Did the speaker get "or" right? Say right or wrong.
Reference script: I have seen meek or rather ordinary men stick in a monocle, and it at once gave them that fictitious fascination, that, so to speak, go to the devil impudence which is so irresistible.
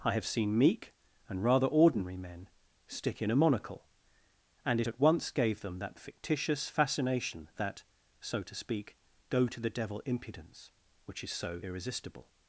wrong